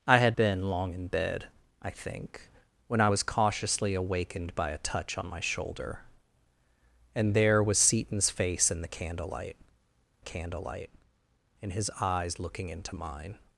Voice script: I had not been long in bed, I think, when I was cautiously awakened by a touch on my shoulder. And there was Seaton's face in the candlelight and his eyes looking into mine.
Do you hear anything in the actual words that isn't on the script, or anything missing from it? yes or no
yes